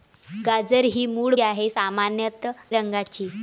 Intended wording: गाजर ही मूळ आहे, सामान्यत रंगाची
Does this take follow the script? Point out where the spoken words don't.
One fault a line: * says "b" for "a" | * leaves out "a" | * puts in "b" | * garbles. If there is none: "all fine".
all fine